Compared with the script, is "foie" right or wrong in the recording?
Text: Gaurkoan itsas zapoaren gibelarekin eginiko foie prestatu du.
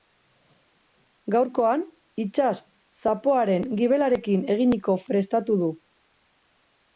wrong